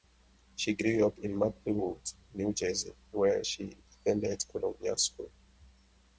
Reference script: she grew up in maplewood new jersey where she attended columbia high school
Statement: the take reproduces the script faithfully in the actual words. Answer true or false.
false